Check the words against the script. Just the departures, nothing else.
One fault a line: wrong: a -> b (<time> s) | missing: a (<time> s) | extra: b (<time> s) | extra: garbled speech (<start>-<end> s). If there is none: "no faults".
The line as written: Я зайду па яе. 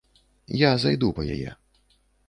no faults